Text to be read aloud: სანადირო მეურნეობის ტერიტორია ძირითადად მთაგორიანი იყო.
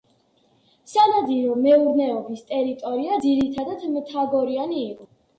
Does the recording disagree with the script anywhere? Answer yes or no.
no